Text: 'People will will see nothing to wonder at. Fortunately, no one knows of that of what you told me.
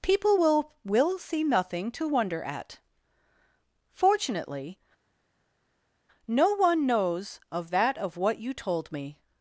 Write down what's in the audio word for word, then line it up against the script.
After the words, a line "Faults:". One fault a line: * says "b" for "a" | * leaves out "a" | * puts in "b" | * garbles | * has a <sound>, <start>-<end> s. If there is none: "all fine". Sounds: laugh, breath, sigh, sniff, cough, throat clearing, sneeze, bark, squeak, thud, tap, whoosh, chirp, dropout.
'People will will see nothing to wonder at. Fortunately, no one knows of that of what you told me.
Faults:
all fine